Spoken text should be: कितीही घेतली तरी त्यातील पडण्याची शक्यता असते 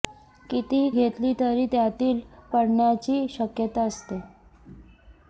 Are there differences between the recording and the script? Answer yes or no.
no